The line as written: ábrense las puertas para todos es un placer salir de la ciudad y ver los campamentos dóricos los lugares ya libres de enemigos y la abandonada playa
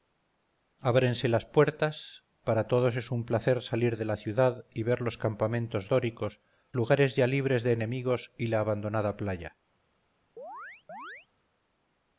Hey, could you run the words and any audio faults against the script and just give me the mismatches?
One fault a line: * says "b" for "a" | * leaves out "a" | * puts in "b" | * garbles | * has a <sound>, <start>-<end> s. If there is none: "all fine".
* leaves out "los"
* has a chirp, 10.4-11.3 s